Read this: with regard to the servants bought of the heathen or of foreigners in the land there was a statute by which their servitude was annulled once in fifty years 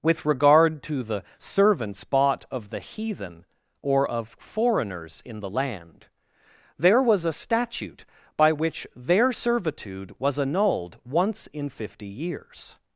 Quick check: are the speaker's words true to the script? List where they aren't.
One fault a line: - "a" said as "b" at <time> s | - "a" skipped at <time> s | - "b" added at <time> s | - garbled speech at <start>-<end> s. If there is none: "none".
none